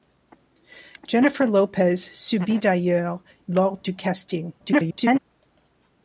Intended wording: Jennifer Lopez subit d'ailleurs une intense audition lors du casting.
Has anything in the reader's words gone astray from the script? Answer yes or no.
yes